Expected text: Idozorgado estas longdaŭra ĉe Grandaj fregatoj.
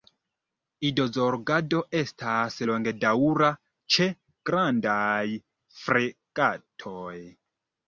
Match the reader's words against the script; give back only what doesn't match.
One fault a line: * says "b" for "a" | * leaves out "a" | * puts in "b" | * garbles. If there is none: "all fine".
all fine